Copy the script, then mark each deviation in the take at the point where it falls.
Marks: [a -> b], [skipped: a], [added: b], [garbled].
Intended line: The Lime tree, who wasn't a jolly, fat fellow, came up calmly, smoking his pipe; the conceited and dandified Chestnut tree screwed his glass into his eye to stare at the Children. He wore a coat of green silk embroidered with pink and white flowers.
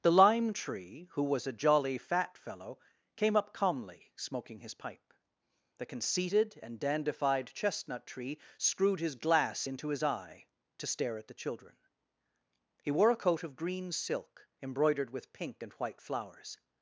The Lime tree, who [wasn't -> was] a jolly, fat fellow, came up calmly, smoking his pipe; the conceited and dandified Chestnut tree screwed his glass into his eye to stare at the Children. He wore a coat of green silk embroidered with pink and white flowers.